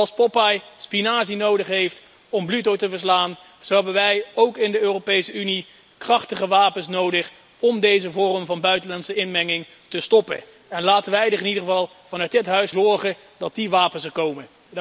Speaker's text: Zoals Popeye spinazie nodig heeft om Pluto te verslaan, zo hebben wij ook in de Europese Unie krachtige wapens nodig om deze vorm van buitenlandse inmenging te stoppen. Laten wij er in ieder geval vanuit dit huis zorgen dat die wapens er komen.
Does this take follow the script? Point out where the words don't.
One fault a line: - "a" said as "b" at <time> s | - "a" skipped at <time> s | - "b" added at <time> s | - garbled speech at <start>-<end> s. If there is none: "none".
none